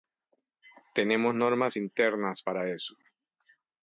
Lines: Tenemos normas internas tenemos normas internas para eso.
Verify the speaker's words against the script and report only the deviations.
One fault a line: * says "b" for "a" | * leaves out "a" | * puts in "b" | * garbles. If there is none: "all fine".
* leaves out "tenemos normas internas"